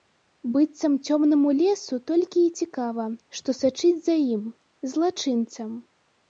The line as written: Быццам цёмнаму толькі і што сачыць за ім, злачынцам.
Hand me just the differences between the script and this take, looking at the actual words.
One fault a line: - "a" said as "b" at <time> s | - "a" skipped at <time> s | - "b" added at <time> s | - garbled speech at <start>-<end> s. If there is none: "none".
- "лесу" added at 1.6 s
- "цікава" added at 2.6 s